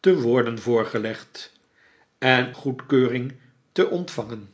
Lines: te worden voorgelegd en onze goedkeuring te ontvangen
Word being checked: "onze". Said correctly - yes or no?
no